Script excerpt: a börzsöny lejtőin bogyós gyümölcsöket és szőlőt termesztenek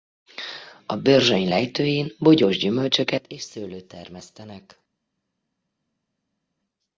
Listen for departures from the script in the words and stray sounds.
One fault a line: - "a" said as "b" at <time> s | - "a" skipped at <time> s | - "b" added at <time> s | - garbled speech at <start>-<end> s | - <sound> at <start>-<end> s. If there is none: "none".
none